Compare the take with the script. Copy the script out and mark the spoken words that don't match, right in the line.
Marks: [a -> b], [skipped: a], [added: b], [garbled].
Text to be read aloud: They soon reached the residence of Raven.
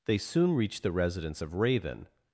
They soon reached the residence of Raven.